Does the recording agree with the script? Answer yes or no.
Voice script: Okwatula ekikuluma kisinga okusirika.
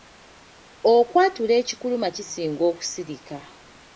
yes